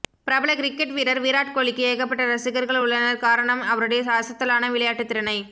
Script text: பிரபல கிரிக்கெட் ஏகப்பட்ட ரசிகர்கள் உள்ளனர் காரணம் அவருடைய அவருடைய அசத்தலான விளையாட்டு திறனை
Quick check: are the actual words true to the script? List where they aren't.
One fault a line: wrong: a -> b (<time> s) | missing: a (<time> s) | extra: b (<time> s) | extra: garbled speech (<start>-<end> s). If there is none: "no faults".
extra: வீரர் விராட் கோலிக்கு (0.9 s)
missing: அவருடைய (4.0 s)